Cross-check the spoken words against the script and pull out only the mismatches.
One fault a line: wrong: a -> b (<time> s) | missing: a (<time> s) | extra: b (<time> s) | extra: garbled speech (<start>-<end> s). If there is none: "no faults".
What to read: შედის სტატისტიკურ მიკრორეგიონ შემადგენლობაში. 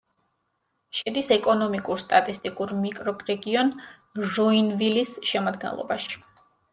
extra: ეკონომიკურ (1.4 s)
extra: ჟოინვილის (4.4 s)